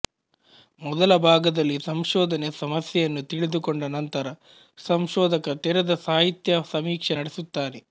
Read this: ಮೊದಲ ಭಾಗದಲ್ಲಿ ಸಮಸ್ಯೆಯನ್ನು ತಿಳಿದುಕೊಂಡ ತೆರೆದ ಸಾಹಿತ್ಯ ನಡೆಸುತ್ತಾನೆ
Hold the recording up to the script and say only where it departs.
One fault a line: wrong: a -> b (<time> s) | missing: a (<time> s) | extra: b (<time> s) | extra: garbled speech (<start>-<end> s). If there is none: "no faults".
extra: ಸಂಶೋಧನೆ (1.8 s)
extra: ನಂತರ ಸಂಶೋಧಕ (4.0 s)
extra: ಸಮೀಕ್ಷೆ (6.7 s)